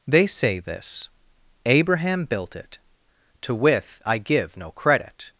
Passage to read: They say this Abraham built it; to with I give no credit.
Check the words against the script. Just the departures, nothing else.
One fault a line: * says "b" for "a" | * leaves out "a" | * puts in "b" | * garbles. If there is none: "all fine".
all fine